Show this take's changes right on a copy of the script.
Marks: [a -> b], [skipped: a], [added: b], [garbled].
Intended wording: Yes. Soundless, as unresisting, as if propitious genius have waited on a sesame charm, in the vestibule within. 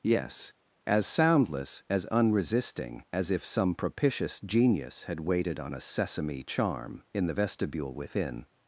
Yes. [added: As] Soundless, as unresisting, as if [added: some] propitious genius [have -> had] waited on a sesame charm, in the vestibule within.